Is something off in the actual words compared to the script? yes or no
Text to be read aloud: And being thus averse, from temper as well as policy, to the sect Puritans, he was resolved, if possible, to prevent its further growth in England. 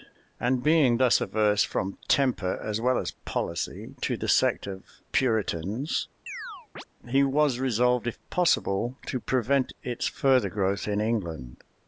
yes